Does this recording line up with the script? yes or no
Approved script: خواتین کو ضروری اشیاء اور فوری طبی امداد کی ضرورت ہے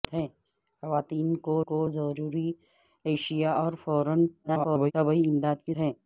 no